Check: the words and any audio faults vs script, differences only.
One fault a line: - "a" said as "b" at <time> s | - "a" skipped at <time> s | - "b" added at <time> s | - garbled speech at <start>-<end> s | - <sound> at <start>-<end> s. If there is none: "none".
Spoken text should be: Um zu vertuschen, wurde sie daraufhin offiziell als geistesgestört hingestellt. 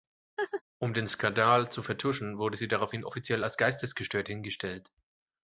- laugh at 0.4-0.6 s
- "den Skandal" added at 0.9 s